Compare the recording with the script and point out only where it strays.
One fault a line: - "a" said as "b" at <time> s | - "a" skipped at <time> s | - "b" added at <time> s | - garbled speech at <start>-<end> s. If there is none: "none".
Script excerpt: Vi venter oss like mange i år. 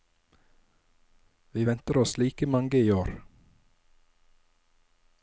none